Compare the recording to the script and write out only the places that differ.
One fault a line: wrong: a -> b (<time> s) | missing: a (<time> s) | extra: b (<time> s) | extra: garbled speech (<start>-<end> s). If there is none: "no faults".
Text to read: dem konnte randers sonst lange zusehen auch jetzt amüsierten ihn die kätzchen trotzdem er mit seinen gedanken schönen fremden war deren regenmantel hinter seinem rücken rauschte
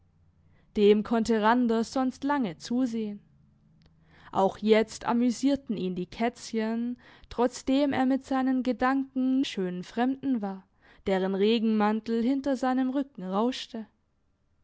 no faults